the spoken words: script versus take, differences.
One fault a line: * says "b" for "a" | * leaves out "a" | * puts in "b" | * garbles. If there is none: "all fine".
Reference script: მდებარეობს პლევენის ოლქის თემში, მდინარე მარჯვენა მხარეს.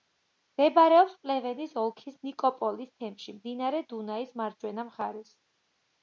* puts in "ნიკოპოლის"
* puts in "დუნაის"